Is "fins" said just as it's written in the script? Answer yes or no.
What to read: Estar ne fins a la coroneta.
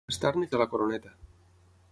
no